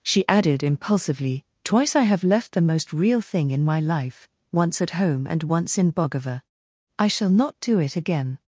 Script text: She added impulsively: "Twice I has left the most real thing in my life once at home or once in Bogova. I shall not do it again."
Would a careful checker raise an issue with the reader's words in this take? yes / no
yes